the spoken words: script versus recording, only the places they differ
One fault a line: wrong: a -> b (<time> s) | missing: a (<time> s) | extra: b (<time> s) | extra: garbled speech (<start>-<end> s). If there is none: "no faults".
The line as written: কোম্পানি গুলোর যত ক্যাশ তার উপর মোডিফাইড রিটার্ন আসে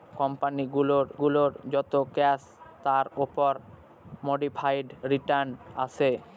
extra: গুলোর (1.2 s)